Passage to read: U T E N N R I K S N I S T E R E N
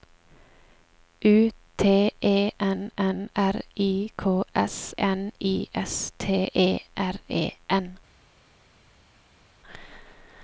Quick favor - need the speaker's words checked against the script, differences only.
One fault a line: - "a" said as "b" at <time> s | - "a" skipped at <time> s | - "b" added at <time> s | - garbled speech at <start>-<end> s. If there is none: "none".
none